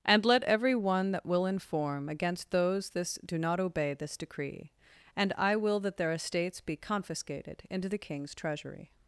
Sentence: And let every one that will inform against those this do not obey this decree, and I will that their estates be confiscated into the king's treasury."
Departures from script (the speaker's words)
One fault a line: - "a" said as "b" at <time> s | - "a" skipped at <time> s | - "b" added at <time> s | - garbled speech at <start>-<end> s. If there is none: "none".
none